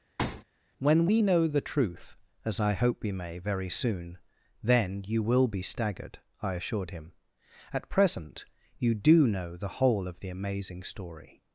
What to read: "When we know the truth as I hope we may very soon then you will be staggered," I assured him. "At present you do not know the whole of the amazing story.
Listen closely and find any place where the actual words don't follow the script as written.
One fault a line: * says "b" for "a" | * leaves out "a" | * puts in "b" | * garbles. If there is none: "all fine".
* leaves out "not"